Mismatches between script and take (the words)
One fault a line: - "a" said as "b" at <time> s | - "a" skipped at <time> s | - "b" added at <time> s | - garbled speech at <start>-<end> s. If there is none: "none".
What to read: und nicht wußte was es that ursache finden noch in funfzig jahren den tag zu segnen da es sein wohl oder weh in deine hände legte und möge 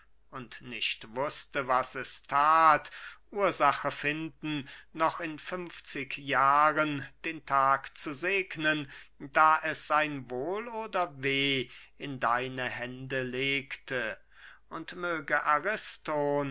none